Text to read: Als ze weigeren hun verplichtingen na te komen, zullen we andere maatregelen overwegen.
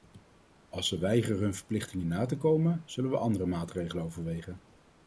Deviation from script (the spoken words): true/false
false